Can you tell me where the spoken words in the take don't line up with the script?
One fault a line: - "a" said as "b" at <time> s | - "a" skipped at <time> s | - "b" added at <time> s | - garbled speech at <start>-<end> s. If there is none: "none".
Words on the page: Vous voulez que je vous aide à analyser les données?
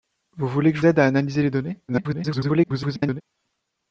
- "vous" skipped at 0.8 s
- garbled speech at 1.9-3.2 s